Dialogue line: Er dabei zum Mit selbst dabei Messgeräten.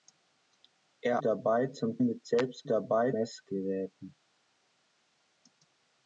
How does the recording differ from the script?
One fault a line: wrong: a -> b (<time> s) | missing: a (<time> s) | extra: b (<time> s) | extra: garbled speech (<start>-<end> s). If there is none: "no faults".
no faults